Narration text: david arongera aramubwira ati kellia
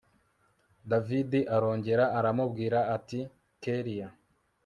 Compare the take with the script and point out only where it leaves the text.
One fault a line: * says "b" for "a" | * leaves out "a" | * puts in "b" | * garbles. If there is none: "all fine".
all fine